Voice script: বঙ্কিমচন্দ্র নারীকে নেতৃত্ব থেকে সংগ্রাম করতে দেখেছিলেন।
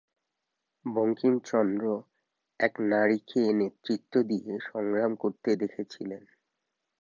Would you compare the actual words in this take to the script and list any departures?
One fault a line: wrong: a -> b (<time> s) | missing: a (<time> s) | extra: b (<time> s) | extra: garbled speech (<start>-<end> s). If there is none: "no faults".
extra: এক (2.6 s)
wrong: থেকে -> দিয়ে (4.2 s)